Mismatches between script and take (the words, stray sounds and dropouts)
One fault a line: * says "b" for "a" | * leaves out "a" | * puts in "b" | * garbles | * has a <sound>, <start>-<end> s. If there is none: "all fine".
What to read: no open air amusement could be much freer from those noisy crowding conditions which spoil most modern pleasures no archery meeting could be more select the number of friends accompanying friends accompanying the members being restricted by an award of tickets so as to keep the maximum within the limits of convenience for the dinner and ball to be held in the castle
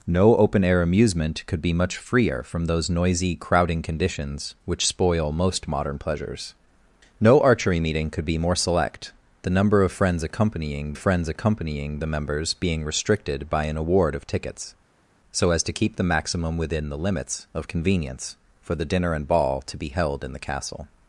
all fine